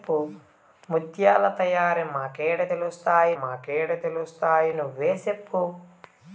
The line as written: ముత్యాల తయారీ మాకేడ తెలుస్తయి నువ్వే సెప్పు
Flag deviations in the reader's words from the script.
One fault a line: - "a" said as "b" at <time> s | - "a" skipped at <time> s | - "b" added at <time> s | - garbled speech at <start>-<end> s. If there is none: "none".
- "మాకేడ తెలుస్తయి" added at 3.4 s